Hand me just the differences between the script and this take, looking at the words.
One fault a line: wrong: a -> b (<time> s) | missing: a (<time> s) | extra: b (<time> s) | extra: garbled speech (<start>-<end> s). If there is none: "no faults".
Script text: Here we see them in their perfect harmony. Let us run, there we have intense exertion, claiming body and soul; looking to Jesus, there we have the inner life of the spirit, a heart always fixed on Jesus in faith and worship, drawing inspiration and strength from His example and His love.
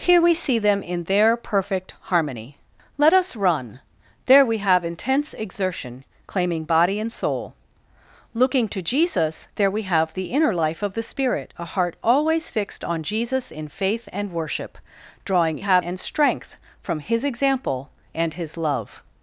wrong: inspiration -> have (15.6 s)